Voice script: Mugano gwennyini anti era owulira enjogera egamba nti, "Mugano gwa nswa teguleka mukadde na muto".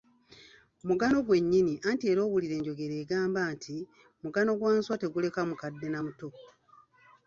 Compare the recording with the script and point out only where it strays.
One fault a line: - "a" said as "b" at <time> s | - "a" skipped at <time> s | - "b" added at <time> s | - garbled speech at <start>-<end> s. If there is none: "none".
none